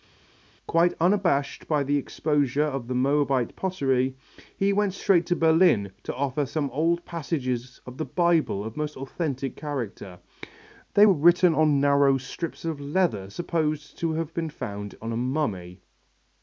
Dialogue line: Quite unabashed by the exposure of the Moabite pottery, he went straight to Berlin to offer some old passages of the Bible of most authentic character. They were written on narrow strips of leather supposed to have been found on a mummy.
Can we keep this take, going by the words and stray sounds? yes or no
yes